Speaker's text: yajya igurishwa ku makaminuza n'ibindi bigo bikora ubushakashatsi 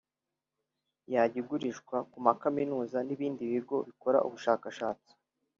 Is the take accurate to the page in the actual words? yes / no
yes